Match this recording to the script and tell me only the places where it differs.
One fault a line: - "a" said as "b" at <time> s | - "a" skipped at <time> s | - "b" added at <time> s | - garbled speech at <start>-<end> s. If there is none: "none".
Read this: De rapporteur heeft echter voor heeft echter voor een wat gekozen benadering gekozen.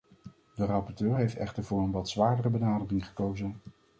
- "heeft echter voor" skipped at 1.8 s
- "gekozen" said as "zwaardere" at 2.1 s